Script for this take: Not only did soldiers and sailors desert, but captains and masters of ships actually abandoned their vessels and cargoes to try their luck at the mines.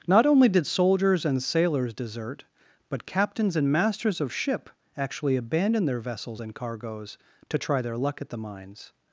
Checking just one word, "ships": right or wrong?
wrong